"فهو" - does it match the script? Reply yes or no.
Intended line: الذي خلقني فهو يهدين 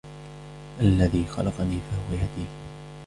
yes